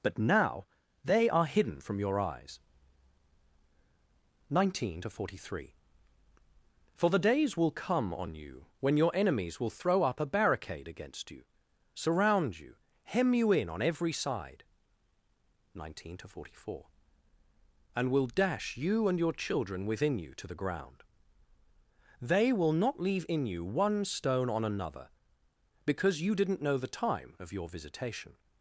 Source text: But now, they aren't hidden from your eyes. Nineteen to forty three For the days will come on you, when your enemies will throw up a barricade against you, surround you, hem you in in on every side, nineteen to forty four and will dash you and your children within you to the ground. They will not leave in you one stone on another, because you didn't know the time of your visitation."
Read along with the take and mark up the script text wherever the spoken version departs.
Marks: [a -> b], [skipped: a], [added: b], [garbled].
But now, they [aren't -> are] hidden from your eyes. Nineteen to forty three For the days will come on you, when your enemies will throw up a barricade against you, surround you, hem you in [skipped: in] on every side, nineteen to forty four and will dash you and your children within you to the ground. They will not leave in you one stone on another, because you didn't know the time of your visitation."